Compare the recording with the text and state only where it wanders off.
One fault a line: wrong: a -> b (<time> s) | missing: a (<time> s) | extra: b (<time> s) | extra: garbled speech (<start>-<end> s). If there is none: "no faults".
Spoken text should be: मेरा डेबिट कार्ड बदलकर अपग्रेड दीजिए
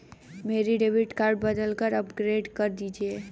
extra: कर (2.6 s)